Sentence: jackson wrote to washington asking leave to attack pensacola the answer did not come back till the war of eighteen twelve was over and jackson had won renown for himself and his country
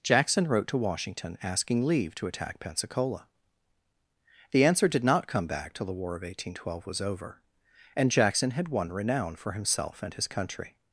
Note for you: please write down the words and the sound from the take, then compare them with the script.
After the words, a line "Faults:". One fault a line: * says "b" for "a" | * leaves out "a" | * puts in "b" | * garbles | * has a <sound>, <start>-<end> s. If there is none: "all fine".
jackson wrote to washington asking leave to attack pensacola the answer did not come back till the war of eighteen twelve was over and jackson had won renown for himself and his country
Faults:
all fine